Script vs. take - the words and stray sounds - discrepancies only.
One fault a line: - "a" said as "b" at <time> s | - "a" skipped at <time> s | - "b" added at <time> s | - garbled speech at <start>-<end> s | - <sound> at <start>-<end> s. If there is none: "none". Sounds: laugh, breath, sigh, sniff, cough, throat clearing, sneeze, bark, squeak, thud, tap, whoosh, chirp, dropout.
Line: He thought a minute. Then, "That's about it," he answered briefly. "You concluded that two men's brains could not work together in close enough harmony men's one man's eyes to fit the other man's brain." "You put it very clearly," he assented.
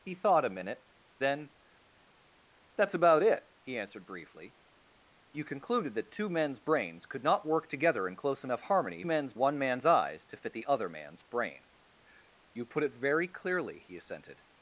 none